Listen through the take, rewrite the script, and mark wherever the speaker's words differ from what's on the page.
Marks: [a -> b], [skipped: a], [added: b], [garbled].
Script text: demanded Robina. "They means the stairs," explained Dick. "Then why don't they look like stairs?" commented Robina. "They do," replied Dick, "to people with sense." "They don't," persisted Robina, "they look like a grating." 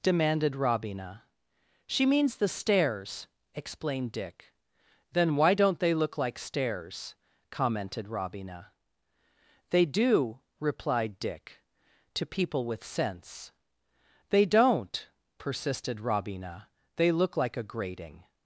demanded Robina. ["They -> She] means the stairs," explained Dick. "Then why don't they look like stairs?" commented Robina. "They do," replied Dick, "to people with sense." "They don't," persisted Robina, "they look like a grating."